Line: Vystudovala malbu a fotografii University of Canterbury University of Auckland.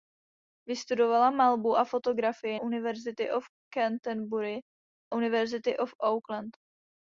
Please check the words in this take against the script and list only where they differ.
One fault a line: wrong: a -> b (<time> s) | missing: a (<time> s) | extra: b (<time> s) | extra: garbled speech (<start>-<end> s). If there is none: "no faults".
no faults